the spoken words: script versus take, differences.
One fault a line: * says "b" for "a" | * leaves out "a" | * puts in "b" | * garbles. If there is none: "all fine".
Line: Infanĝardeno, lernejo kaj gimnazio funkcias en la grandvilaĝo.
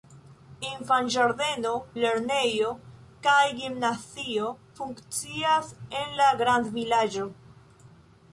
all fine